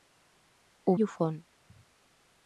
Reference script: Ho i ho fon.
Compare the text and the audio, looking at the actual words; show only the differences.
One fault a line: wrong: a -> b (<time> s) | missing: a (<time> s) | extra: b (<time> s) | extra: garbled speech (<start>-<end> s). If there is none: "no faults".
no faults